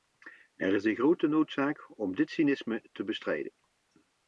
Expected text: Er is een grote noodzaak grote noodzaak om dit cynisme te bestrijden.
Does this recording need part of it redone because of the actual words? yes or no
yes